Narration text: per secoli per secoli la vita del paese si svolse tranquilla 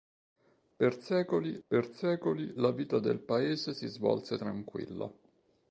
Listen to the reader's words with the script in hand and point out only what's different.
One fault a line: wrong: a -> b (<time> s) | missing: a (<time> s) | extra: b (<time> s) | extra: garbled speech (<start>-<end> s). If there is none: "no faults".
no faults